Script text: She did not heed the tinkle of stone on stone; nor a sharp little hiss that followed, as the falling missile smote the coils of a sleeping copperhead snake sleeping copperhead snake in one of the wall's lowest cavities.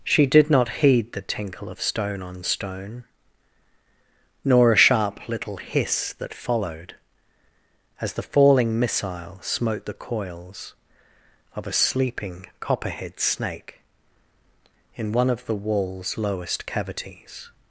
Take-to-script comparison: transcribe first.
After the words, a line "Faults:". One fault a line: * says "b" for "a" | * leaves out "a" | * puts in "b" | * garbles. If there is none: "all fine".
She did not heed the tinkle of stone on stone; nor a sharp little hiss that followed, as the falling missile smote the coils of a sleeping copperhead snake in one of the wall's lowest cavities.
Faults:
* leaves out "sleeping copperhead snake"